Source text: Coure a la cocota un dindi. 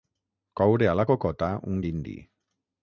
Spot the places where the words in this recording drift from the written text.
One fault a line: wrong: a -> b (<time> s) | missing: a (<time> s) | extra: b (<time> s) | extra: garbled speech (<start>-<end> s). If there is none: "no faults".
no faults